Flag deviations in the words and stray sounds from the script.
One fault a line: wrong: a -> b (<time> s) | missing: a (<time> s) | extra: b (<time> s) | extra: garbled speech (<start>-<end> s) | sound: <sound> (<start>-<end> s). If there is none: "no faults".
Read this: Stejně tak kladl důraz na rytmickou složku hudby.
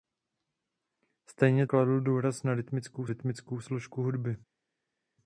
missing: tak (1.7 s)
extra: rytmickou (3.0 s)